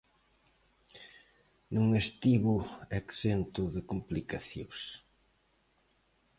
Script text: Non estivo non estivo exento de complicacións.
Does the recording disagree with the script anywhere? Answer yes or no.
yes